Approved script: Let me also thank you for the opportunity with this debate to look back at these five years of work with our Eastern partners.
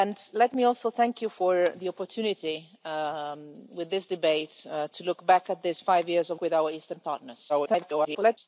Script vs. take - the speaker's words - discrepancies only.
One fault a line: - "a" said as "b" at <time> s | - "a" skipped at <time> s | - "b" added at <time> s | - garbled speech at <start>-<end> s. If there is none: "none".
- "work" skipped at 6.4 s
- garbled speech at 7.5-8.4 s